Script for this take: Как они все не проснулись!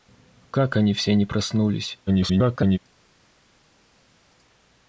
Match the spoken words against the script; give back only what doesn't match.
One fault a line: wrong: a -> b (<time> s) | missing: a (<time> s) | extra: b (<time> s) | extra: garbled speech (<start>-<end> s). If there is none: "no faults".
extra: garbled speech (2.1-2.8 s)